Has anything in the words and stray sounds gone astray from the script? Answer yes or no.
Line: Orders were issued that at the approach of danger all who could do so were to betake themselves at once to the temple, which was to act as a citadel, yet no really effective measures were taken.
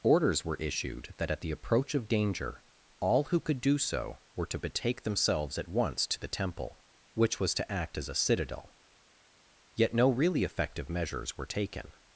no